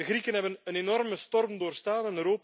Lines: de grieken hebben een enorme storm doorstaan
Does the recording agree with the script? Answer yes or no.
yes